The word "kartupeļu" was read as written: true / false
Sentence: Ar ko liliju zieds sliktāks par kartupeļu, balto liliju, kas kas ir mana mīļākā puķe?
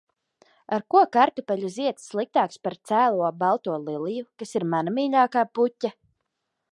false